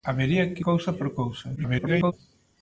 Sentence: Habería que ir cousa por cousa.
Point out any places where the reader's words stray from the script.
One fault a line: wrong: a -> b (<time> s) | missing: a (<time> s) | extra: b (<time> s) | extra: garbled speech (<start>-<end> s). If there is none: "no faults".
missing: ir (0.6 s)
extra: garbled speech (1.6-2.1 s)